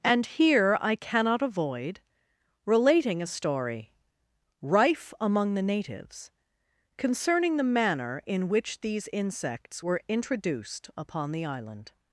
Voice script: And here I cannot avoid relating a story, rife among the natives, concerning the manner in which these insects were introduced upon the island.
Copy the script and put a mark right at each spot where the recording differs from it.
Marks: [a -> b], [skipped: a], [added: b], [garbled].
And here I cannot avoid relating a story, rife among the natives, concerning the manner in which these insects were introduced upon the island.